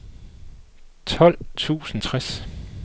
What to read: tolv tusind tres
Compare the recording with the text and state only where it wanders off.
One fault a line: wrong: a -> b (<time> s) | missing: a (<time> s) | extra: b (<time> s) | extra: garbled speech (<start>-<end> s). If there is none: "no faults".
no faults